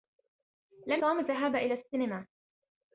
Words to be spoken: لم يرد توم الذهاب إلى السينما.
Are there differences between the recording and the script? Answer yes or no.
yes